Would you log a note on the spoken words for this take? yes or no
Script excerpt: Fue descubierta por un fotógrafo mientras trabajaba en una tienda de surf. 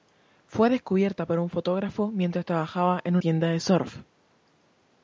yes